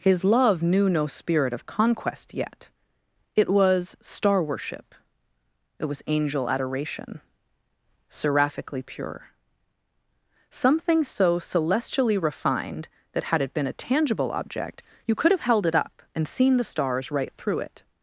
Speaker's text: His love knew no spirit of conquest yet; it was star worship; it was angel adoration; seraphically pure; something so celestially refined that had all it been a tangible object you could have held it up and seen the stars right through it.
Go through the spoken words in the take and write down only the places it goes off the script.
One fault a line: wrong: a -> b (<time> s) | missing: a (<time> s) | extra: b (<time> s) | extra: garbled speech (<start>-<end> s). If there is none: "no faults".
missing: all (13.4 s)